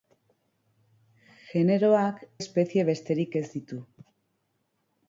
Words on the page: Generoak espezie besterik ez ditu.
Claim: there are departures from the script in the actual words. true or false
false